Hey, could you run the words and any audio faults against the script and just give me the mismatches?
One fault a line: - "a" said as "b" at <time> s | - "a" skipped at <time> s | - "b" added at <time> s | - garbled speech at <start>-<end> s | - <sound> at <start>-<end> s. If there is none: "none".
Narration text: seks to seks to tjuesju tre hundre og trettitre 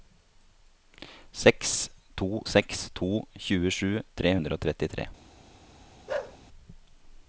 - bark at 6.1-6.4 s